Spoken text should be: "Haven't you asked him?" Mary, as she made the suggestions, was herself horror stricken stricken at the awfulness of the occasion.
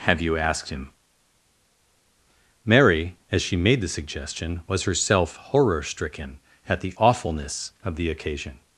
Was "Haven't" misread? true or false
true